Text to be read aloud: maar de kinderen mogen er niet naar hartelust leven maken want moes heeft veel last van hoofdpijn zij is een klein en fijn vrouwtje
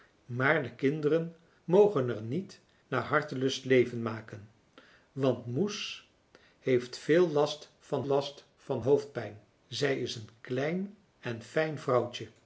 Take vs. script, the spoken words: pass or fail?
fail